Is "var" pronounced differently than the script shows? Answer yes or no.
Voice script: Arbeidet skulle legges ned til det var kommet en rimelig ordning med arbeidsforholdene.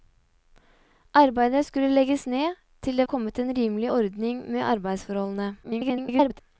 yes